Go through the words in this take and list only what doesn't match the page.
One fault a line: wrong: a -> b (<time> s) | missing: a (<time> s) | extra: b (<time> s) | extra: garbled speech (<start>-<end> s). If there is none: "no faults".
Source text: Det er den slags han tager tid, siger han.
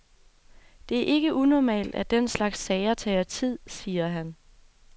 extra: ikke unormalt at (1.1 s)
wrong: han -> sager (2.6 s)